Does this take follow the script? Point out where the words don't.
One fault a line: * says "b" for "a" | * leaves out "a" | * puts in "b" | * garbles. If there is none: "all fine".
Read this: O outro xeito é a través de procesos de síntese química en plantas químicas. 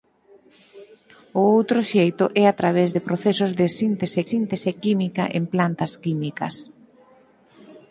* puts in "síntese"